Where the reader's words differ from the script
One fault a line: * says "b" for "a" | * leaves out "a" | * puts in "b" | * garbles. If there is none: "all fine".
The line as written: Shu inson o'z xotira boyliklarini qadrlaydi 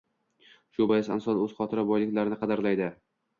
* puts in "bois"